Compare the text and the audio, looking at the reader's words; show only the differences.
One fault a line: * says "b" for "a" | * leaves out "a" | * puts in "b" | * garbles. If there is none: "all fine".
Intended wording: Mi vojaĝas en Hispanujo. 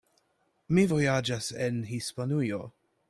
all fine